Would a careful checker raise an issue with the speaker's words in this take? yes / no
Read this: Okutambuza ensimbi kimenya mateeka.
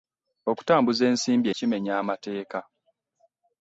no